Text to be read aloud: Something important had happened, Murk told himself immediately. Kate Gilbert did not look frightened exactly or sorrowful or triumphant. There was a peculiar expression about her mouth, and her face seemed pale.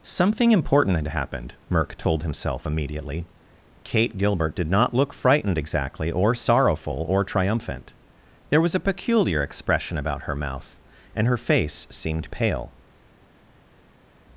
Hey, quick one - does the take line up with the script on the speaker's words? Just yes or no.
yes